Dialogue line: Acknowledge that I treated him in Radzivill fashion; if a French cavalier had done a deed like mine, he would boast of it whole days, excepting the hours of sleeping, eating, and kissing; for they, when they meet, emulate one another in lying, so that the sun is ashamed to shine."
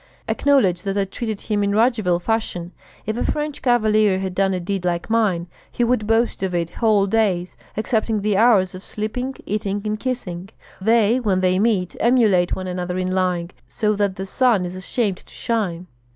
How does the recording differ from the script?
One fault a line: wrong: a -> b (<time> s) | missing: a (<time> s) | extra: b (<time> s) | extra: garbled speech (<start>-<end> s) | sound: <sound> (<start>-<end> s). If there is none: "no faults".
missing: for (10.5 s)